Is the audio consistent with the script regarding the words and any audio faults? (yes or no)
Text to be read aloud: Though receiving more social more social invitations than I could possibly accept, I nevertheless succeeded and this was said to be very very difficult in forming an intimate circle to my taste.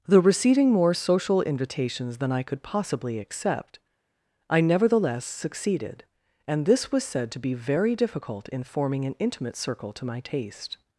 no